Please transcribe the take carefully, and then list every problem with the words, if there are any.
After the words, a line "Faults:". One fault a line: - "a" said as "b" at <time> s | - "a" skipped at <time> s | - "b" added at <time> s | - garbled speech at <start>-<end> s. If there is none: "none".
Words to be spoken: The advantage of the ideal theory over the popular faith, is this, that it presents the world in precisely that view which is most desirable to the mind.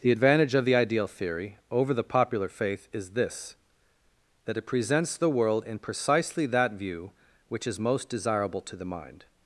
The advantage of the ideal theory over the popular faith, is this, that it presents the world in precisely that view which is most desirable to the mind.
Faults:
none